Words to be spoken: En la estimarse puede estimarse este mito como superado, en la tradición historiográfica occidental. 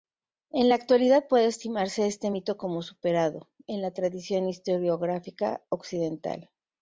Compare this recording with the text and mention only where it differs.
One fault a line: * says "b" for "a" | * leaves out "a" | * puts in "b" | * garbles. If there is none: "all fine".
* says "actualidad" for "estimarse"